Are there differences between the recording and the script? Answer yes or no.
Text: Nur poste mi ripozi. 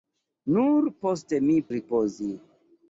no